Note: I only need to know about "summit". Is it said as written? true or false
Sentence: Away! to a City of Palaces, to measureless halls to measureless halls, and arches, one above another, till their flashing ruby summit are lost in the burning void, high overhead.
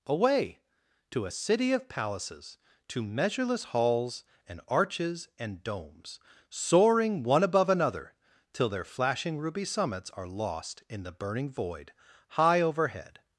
false